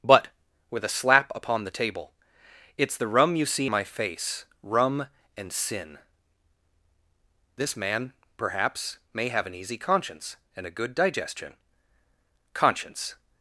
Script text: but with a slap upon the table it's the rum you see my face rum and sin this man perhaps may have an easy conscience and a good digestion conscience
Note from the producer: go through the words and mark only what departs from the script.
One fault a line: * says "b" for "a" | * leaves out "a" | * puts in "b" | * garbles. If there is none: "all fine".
all fine